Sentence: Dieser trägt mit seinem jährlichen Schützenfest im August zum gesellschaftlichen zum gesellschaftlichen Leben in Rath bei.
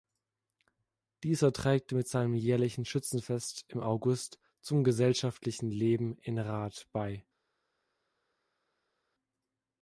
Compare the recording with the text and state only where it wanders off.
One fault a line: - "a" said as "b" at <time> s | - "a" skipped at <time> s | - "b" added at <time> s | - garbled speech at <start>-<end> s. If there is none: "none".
- "zum gesellschaftlichen" skipped at 5.7 s